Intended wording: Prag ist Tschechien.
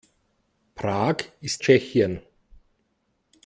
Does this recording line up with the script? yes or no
yes